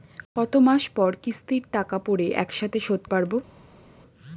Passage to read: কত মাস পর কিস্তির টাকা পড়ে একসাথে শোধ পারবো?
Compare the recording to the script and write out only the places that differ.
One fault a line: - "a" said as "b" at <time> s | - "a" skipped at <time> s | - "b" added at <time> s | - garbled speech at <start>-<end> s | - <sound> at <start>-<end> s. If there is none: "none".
none